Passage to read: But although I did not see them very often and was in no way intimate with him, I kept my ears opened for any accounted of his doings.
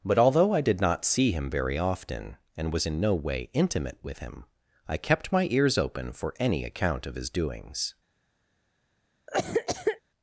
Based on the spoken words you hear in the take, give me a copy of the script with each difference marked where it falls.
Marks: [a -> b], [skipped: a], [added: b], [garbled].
But although I did not see [them -> him] very often and was in no way intimate with him, I kept my ears [opened -> open] for any [accounted -> account] of his doings.